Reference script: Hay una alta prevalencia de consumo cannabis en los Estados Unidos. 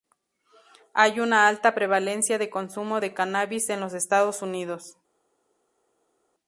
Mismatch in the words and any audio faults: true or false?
true